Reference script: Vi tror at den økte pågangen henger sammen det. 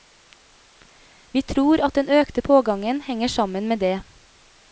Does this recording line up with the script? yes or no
no